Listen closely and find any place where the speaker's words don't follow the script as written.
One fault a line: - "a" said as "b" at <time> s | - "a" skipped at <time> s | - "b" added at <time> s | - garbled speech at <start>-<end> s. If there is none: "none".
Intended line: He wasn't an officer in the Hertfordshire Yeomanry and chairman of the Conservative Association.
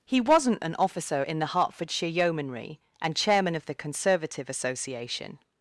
none